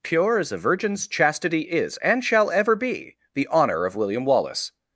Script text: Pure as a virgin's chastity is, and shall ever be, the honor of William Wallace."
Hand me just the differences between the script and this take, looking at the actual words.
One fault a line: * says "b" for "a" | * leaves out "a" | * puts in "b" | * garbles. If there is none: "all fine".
all fine